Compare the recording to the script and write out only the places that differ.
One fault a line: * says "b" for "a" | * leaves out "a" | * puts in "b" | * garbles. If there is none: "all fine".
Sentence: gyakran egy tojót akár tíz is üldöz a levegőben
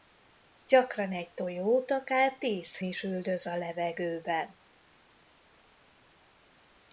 all fine